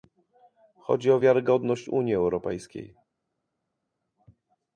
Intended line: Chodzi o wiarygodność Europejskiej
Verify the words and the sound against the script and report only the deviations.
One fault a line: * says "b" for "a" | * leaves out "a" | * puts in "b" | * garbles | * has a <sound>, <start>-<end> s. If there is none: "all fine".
* puts in "Unii"